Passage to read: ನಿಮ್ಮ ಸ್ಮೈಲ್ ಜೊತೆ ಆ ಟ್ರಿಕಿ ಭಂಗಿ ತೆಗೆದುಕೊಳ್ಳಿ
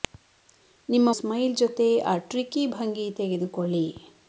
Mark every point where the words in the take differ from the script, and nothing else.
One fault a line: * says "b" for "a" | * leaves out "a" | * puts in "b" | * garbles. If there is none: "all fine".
all fine